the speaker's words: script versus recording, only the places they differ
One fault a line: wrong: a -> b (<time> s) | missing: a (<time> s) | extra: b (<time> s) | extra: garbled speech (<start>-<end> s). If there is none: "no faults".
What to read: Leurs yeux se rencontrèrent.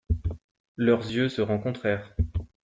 no faults